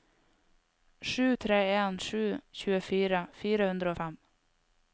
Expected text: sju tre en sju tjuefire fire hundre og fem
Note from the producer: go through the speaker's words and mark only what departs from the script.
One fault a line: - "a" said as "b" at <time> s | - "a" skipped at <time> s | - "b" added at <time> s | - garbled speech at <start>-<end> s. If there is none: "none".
none